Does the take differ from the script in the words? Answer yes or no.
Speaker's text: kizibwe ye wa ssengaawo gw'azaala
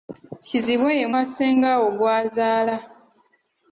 no